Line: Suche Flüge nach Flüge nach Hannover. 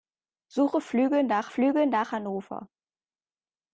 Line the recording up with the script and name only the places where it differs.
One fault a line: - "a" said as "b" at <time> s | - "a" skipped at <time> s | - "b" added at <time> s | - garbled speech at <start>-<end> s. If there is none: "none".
none